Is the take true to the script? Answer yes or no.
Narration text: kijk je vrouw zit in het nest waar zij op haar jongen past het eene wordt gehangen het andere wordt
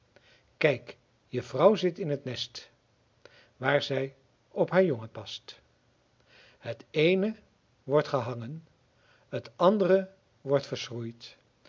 yes